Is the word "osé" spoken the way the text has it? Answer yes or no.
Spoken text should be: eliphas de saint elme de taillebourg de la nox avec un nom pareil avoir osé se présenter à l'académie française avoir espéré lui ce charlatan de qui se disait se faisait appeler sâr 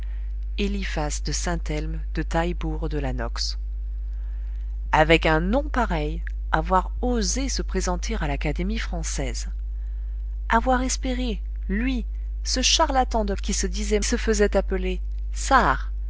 yes